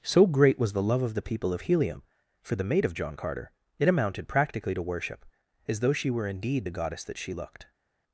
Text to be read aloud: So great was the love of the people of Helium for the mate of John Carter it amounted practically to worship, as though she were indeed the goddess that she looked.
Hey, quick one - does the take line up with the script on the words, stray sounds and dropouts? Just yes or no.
yes